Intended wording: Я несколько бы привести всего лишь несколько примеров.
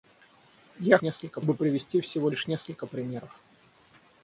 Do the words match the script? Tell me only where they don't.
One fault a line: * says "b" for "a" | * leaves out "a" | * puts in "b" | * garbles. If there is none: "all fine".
all fine